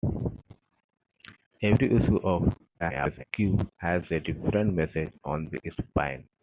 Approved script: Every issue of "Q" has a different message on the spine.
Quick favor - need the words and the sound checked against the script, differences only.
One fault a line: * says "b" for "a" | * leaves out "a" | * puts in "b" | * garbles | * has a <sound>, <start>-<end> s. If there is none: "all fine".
* garbles